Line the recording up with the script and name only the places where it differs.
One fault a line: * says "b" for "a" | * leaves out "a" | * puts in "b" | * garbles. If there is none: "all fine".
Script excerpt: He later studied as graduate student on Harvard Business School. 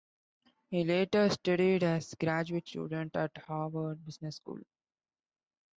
* says "at" for "on"